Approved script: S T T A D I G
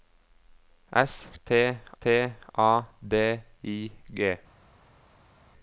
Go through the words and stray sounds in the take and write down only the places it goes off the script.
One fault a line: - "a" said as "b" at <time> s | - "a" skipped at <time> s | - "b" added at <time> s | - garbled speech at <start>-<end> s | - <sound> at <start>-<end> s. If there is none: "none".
none